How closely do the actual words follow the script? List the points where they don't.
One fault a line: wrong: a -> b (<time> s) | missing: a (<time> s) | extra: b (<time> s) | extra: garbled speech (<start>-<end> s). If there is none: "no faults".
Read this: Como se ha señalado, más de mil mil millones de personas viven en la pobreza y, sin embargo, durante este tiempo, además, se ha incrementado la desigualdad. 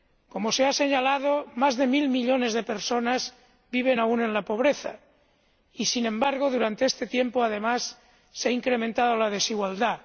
missing: mil (2.1 s)
extra: aún (4.0 s)